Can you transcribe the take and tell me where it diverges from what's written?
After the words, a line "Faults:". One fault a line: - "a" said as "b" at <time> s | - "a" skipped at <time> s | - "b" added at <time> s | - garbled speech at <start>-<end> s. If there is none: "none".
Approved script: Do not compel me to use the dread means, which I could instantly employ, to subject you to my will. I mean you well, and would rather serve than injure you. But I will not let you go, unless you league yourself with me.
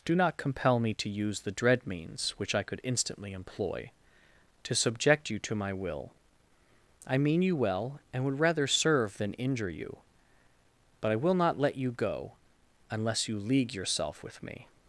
Do not compel me to use the dread means, which I could instantly employ, to subject you to my will. I mean you well, and would rather serve than injure you. But I will not let you go, unless you league yourself with me.
Faults:
none